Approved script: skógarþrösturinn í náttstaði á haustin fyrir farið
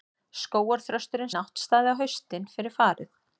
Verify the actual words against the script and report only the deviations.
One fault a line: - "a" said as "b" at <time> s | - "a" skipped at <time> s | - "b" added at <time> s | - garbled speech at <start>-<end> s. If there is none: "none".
none